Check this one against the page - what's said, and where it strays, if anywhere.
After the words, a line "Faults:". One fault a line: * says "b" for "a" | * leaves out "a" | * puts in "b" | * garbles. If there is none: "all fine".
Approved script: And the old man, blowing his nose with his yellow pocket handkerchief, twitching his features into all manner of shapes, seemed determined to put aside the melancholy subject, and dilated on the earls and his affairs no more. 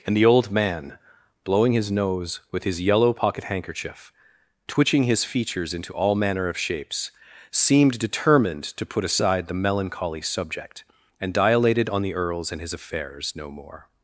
And the old man, blowing his nose with his yellow pocket handkerchief, twitching his features into all manner of shapes, seemed determined to put aside the melancholy subject, and dilated on the earls and his affairs no more.
Faults:
all fine